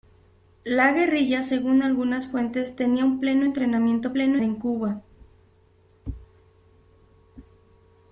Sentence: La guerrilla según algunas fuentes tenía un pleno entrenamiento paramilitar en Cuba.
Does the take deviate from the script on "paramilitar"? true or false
true